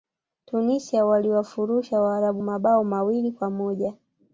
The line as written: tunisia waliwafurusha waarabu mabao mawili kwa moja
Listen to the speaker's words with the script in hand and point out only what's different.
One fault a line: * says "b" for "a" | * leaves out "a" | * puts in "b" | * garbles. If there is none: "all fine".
all fine